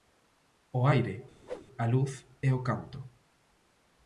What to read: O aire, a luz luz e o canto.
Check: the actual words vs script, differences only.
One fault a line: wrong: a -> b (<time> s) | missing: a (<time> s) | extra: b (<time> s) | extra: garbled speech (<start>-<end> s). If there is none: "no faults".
missing: luz (2.1 s)